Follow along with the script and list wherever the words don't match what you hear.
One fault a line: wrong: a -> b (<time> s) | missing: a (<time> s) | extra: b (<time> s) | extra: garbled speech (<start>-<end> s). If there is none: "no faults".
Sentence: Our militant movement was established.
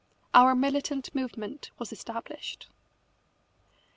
no faults